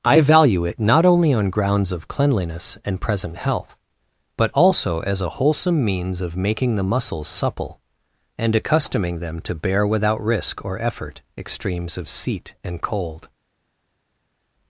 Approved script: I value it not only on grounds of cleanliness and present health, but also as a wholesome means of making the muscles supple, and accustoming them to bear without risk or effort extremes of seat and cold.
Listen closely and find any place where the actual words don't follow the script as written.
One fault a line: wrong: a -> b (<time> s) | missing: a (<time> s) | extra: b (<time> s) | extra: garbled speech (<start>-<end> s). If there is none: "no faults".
no faults